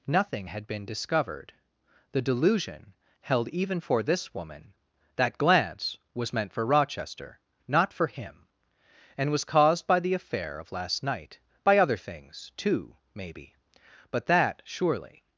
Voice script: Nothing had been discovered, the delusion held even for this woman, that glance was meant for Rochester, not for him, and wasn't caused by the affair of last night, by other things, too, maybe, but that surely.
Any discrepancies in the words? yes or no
yes